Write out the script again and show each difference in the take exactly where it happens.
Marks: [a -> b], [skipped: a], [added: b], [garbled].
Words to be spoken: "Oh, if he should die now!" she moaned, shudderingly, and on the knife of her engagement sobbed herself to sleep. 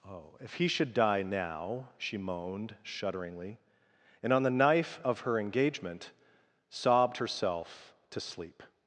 "Oh, if he should die now!" she moaned, shudderingly, and on the knife of her engagement sobbed herself to sleep.